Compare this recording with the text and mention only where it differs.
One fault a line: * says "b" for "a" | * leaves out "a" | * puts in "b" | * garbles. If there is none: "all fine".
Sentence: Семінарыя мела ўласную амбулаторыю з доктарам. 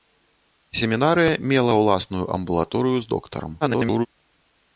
* garbles